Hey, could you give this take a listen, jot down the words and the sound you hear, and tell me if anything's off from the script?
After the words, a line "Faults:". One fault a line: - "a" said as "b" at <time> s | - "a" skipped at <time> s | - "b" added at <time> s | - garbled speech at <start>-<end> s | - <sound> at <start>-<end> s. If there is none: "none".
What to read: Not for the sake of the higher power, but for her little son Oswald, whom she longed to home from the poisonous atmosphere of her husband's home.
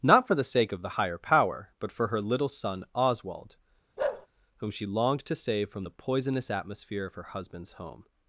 Not for the sake of the higher power, but for her little son Oswald, whom she longed to save from the poisonous atmosphere of her husband's home.
Faults:
- bark at 4.0-4.3 s
- "home" said as "save" at 5.3 s